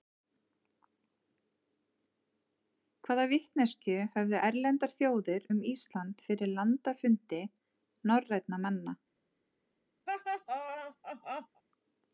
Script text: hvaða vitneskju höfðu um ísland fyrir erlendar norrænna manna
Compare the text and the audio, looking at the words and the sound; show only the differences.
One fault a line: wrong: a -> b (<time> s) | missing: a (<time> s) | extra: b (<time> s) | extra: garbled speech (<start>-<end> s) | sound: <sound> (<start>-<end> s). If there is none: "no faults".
extra: erlendar þjóðir (4.5 s)
wrong: erlendar -> landafundi (6.6 s)
sound: laugh (10.1-11.6 s)